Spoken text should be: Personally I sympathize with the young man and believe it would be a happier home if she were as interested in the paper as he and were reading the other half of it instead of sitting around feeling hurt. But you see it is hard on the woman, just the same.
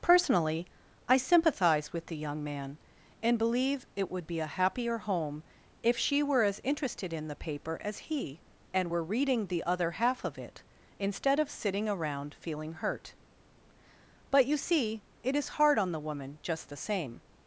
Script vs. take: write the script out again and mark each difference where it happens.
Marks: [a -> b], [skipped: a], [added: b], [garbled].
Personally I sympathize with the young man and believe it would be a happier home if she were as interested in the paper as he and were reading the other half of it instead of sitting around feeling hurt. But you see it is hard on the woman, just the same.